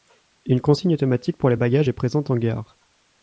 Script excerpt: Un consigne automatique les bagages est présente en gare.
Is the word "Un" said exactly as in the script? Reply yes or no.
no